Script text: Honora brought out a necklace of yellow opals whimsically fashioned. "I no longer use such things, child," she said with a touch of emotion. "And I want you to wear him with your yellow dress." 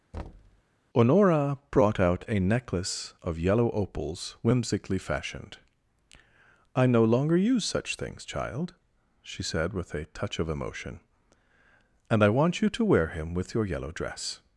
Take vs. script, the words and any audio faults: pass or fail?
fail